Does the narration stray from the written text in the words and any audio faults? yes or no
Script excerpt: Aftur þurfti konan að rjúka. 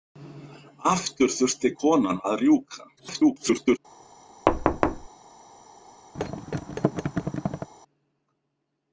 yes